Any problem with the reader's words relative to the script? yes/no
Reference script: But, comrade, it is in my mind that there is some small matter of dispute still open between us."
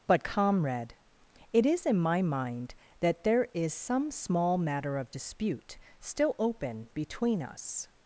no